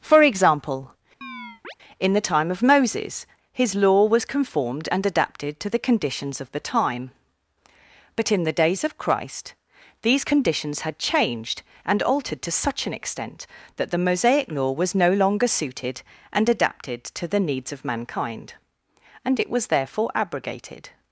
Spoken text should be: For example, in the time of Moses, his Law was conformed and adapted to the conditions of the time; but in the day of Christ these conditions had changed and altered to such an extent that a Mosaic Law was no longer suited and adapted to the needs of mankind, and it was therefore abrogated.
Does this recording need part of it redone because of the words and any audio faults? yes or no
yes